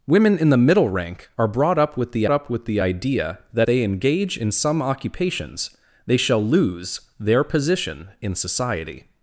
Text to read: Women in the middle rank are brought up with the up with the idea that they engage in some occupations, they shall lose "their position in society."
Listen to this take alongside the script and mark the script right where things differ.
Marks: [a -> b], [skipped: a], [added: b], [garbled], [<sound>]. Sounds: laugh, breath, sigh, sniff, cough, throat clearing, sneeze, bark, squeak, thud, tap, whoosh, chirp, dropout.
Women in the middle rank are brought up with the up with the idea that they engage in some occupations, they shall lose "their position in society."